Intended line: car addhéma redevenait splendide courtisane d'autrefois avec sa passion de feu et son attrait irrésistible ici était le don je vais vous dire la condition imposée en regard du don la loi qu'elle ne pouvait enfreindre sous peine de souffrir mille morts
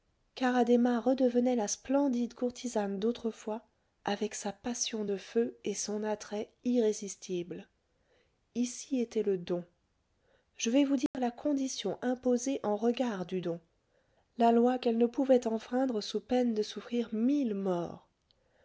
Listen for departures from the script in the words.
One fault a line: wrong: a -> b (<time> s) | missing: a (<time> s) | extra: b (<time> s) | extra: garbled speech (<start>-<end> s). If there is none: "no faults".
extra: la (1.6 s)